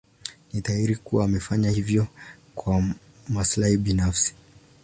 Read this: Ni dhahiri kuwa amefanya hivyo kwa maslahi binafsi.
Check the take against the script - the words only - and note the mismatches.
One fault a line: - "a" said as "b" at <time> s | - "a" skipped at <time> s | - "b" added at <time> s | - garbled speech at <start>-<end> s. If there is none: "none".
none